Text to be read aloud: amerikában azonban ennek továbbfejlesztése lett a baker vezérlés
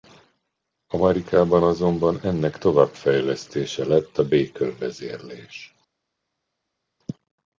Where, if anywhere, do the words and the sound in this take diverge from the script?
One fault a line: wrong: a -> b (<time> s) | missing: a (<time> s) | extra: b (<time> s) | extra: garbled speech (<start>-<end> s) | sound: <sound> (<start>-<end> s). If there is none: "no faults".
no faults